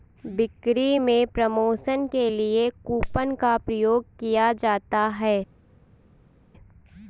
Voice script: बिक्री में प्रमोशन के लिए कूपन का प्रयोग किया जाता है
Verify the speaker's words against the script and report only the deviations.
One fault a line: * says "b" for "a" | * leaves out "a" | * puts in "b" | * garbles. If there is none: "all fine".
all fine